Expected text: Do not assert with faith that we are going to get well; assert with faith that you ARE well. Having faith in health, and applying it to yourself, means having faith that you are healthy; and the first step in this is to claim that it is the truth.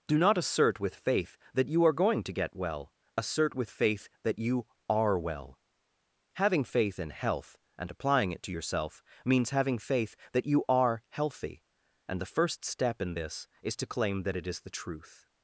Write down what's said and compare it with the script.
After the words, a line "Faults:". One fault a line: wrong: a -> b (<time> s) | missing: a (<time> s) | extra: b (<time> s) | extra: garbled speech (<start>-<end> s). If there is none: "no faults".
Do not assert with faith that you are going to get well; assert with faith that you ARE well. Having faith in health, and applying it to yourself, means having faith that you are healthy; and the first step in this is to claim that it is the truth.
Faults:
wrong: we -> you (1.7 s)